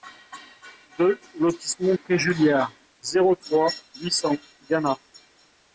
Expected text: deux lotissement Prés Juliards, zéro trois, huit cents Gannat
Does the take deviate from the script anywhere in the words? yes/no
no